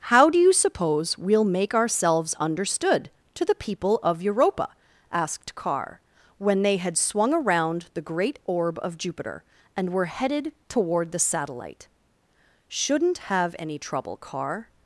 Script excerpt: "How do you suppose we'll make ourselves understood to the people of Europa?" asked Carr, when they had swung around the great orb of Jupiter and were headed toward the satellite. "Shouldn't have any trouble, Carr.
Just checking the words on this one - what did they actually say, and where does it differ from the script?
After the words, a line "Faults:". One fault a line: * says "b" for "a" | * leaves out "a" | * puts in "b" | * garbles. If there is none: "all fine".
"How do you suppose we'll make ourselves understood to the people of Europa?" asked Carr, when they had swung around the great orb of Jupiter and were headed toward the satellite. "Shouldn't have any trouble, Carr.
Faults:
all fine